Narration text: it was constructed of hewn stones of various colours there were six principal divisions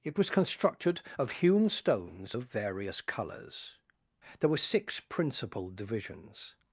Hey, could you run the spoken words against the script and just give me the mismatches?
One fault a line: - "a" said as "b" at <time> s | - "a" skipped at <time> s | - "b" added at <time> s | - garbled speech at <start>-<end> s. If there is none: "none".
none